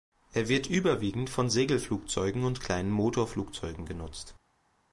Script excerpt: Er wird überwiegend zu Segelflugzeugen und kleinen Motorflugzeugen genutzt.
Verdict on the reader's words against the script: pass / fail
fail